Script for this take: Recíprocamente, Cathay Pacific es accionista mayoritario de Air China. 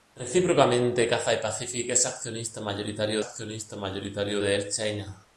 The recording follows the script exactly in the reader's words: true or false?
false